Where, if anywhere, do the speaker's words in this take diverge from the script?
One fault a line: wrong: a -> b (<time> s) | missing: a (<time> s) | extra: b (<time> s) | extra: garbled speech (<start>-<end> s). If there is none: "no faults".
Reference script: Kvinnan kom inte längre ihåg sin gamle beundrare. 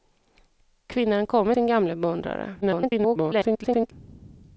missing: inte längre ihåg (1.5 s)
extra: garbled speech (2.6-3.9 s)